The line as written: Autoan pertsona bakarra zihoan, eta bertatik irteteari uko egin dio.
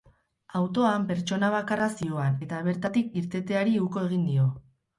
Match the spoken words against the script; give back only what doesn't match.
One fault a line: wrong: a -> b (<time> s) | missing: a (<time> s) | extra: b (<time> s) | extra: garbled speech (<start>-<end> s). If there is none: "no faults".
no faults